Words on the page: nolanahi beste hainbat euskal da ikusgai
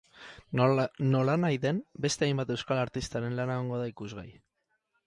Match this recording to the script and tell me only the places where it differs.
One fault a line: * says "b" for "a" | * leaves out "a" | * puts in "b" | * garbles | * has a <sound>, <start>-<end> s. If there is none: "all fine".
* puts in "den"
* puts in "artistaren lana egongo"